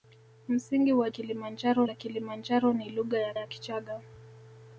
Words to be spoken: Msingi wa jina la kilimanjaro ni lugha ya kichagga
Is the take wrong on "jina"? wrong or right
wrong